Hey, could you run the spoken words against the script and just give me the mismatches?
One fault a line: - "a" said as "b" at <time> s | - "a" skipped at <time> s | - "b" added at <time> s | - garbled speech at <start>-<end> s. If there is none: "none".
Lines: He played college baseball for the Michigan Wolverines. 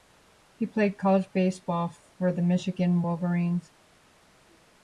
none